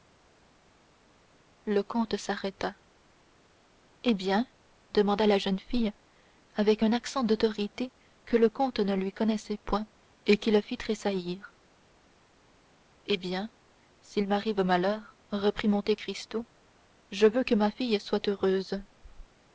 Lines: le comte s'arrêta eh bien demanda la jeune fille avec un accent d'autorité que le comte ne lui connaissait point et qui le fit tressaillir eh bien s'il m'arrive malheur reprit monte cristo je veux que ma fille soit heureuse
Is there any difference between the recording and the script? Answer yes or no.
no